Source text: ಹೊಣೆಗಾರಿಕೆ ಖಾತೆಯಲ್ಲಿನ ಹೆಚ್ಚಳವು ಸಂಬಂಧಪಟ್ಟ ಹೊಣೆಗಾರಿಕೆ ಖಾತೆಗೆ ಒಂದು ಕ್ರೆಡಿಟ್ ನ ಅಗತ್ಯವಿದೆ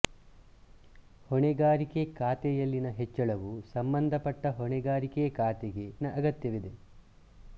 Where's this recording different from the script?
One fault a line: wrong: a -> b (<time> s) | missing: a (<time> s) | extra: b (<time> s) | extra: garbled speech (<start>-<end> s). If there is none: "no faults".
missing: ಒಂದು ಕ್ರೆಡಿಟ್ (5.9 s)